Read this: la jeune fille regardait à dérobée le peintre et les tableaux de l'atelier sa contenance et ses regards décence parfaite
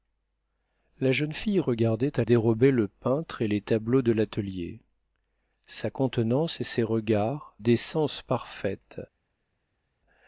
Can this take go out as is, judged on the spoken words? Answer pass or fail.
pass